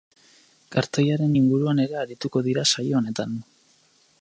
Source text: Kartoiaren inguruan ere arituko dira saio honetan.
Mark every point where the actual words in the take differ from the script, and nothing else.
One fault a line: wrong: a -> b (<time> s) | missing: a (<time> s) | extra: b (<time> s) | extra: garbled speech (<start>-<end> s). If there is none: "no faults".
no faults